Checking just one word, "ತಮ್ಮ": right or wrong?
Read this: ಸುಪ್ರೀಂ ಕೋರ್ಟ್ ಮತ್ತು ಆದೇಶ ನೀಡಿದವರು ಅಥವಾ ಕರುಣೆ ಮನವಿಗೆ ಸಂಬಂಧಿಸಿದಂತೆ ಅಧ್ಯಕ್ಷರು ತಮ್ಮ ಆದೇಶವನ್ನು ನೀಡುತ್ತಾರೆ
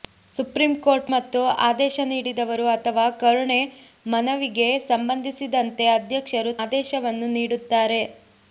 wrong